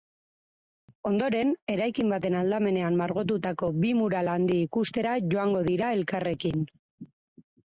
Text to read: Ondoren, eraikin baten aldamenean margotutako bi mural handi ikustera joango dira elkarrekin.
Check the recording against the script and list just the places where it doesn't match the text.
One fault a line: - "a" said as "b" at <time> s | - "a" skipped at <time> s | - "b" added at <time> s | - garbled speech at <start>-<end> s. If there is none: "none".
none